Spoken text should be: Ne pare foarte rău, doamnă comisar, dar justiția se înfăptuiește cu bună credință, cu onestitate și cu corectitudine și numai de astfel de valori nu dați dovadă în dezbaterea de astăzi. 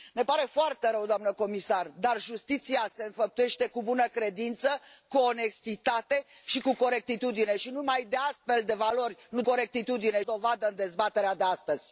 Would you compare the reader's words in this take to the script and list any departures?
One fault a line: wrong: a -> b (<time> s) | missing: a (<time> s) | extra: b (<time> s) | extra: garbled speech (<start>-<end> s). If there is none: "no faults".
wrong: dați -> corectitudine (9.4 s)